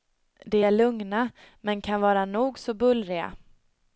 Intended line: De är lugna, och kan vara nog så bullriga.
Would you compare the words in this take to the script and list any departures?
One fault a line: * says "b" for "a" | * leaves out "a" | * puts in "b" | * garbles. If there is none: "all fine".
* says "men" for "och"